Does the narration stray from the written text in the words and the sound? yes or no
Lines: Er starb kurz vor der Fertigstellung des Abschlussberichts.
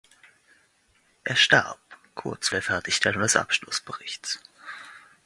yes